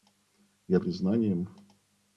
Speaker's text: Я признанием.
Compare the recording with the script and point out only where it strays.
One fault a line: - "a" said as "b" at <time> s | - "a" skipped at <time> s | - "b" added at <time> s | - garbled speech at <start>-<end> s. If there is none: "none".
none